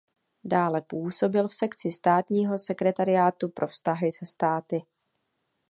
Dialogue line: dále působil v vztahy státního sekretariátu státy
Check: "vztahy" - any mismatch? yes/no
yes